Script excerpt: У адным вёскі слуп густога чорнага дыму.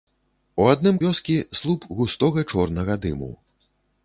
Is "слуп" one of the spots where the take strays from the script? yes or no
no